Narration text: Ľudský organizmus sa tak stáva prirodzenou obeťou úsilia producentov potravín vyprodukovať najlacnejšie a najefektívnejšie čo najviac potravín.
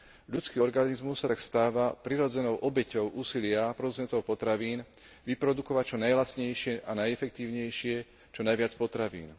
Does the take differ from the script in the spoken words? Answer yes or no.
yes